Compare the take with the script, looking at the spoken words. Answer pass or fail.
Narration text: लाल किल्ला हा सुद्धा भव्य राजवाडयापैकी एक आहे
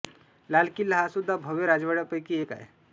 pass